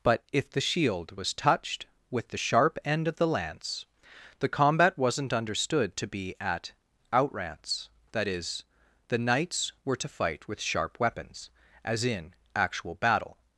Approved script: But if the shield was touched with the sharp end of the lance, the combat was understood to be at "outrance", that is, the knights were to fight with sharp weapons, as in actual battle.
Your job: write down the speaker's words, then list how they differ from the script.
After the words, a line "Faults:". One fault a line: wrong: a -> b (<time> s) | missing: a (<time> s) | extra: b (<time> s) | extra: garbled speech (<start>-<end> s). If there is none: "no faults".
But if the shield was touched with the sharp end of the lance, the combat wasn't understood to be at "outrance", that is, the knights were to fight with sharp weapons, as in actual battle.
Faults:
wrong: was -> wasn't (5.0 s)